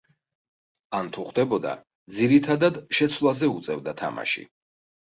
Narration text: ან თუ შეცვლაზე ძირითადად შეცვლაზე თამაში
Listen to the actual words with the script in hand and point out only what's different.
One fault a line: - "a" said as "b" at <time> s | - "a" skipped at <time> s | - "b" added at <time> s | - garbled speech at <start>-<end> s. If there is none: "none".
- "შეცვლაზე" said as "ხვდებოდა" at 1.3 s
- "უწევდა" added at 3.6 s